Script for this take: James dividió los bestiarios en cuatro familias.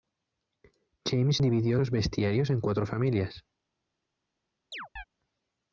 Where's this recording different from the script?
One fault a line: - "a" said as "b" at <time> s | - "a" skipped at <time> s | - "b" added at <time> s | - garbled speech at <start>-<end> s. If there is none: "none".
none